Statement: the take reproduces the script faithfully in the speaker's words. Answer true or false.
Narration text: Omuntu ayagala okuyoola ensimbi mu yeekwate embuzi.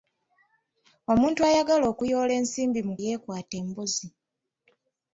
true